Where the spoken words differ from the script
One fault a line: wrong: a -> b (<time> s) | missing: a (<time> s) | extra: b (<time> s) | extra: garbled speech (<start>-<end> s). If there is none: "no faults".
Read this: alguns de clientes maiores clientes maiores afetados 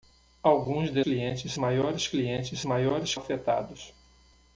no faults